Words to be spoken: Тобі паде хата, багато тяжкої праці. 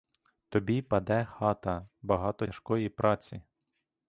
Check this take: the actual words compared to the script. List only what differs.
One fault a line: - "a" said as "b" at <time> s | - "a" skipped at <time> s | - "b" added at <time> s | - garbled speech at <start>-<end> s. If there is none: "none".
none